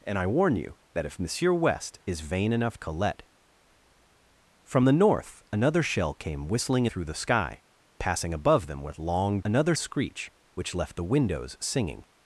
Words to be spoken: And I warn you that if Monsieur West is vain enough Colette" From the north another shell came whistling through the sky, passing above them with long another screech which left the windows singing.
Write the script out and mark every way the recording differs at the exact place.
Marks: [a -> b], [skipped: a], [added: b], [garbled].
And I warn you that if Monsieur West is vain enough Colette" From the north another shell came whistling through the sky, passing above them with long another screech which left the windows singing.